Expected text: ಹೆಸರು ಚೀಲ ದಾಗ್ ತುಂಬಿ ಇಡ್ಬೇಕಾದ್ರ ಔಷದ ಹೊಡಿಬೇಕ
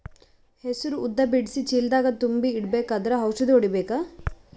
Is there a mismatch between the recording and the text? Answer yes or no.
yes